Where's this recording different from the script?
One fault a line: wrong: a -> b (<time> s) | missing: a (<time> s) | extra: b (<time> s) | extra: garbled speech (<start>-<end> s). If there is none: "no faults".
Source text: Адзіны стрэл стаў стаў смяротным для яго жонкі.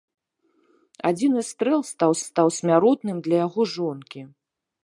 no faults